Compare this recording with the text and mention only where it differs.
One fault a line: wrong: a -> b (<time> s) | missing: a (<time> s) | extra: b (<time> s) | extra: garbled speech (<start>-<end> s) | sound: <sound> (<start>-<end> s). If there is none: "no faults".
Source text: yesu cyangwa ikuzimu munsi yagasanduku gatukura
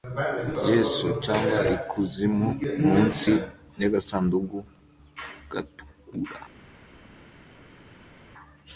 no faults